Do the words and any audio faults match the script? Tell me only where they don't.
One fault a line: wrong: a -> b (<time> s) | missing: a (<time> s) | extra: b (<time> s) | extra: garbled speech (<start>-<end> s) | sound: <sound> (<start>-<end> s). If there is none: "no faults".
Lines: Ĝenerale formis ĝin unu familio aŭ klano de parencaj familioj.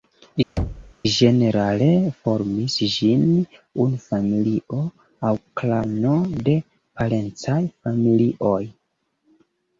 sound: thud (0.6-0.9 s)